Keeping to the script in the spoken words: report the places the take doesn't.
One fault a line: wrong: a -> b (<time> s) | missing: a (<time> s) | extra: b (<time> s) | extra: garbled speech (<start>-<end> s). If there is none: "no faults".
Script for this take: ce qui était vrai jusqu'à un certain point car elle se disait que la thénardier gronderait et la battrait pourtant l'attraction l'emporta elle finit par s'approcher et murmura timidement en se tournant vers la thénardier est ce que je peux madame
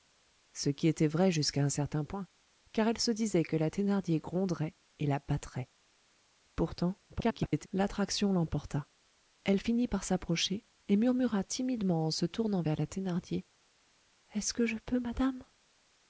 extra: garbled speech (7.1-7.7 s)